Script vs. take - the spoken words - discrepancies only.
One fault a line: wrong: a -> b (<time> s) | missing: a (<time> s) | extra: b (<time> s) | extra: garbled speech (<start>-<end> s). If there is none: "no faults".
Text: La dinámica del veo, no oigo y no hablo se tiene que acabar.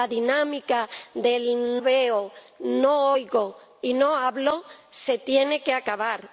no faults